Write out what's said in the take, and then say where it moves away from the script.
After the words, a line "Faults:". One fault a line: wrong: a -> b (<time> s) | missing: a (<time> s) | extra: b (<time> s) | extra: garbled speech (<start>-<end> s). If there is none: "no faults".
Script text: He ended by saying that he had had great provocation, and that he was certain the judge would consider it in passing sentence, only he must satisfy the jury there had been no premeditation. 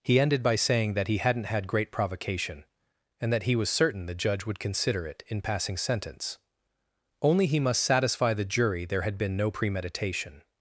He ended by saying that he hadn't had great provocation, and that he was certain the judge would consider it in passing sentence, only he must satisfy the jury there had been no premeditation.
Faults:
wrong: had -> hadn't (1.2 s)